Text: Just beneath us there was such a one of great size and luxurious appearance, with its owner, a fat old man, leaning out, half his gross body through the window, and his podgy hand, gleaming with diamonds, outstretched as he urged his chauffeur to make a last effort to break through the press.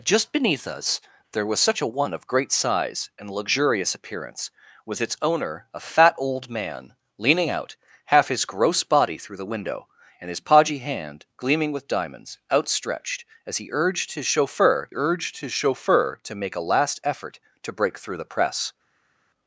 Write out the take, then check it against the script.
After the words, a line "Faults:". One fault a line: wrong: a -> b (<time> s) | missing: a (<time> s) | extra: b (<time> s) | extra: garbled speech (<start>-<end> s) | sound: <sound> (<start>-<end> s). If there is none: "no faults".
Just beneath us there was such a one of great size and luxurious appearance, with its owner, a fat old man, leaning out, half his gross body through the window, and his podgy hand, gleaming with diamonds, outstretched as he urged his chauffeur urged his chauffeur to make a last effort to break through the press.
Faults:
extra: urged his chauffeur (14.9 s)